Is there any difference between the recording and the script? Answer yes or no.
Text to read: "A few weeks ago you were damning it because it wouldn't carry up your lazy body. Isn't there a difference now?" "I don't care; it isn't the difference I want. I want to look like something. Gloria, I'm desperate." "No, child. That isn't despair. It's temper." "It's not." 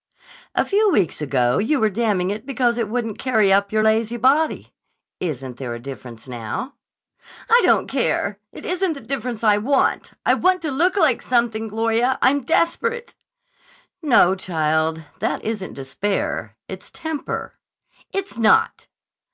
no